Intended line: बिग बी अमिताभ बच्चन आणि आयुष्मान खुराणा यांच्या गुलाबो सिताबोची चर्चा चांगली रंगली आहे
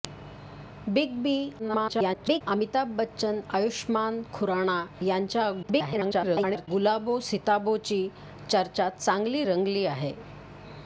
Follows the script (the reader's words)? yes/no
no